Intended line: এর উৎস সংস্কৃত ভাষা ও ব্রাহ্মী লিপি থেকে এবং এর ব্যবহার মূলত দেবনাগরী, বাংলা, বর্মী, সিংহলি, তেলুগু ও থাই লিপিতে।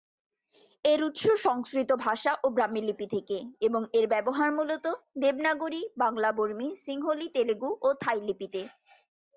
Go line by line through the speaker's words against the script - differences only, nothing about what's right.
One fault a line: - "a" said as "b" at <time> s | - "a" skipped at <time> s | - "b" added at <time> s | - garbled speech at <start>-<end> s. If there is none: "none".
none